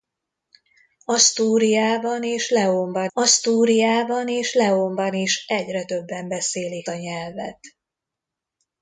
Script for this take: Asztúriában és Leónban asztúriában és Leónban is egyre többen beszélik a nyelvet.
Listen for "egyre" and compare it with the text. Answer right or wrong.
right